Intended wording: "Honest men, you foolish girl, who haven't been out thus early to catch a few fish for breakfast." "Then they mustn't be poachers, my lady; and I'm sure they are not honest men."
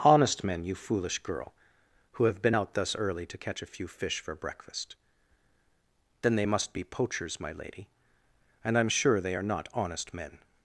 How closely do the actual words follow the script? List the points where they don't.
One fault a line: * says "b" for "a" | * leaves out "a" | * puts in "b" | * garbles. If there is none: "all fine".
* says "have" for "haven't"
* says "must" for "mustn't"